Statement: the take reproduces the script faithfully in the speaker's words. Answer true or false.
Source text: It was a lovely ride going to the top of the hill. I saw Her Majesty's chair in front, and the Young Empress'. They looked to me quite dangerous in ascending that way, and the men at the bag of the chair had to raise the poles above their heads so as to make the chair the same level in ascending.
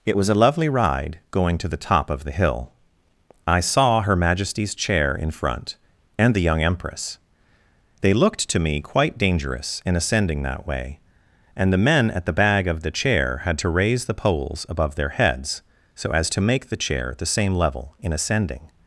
true